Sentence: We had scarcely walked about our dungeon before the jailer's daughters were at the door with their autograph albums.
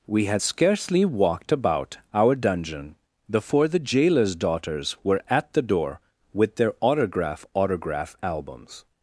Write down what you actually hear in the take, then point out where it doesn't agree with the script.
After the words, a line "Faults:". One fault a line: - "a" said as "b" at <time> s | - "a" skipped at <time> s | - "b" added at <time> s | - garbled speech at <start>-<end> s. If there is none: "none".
We had scarcely walked about our dungeon before the jailer's daughters were at the door with their autograph autograph albums.
Faults:
- "autograph" added at 7.5 s